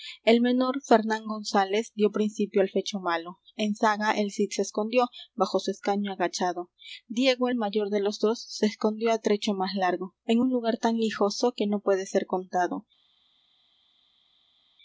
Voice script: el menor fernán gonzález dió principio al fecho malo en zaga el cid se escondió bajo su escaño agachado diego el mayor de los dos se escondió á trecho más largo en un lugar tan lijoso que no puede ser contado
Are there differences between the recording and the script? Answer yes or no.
no